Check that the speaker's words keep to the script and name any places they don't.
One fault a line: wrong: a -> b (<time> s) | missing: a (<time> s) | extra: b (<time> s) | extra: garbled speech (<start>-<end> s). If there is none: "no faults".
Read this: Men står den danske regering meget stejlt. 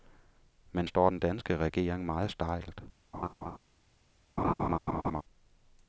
no faults